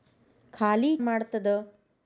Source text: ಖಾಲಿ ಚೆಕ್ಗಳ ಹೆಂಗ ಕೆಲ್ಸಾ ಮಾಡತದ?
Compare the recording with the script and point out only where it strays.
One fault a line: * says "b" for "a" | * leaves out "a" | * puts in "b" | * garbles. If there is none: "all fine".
* leaves out "ಚೆಕ್ಗಳ ಹೆಂಗ ಕೆಲ್ಸಾ"